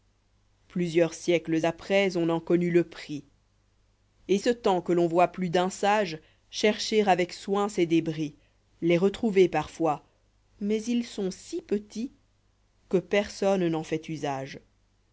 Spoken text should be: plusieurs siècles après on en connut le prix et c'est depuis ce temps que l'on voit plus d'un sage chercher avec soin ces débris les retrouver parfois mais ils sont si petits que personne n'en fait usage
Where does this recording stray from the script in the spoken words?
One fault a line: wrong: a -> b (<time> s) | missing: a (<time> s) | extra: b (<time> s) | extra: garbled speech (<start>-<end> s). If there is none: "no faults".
missing: c'est depuis (4.4 s)